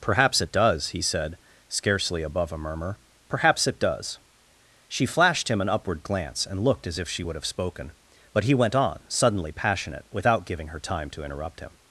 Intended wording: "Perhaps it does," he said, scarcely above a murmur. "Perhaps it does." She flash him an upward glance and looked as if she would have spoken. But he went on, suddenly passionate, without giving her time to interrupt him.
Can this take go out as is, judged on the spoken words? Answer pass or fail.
fail